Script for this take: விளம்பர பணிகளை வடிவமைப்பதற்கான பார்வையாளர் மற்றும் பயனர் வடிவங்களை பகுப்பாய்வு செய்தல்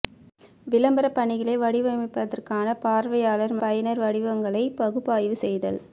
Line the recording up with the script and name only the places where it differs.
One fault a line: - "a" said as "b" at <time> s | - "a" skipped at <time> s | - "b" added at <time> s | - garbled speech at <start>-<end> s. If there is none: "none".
- "மற்றும்" skipped at 3.5 s